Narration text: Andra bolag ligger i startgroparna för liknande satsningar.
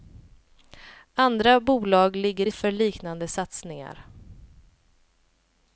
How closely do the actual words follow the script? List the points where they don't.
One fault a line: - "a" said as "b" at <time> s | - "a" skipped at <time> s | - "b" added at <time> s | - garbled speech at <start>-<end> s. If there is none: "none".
- "startgroparna" skipped at 2.5 s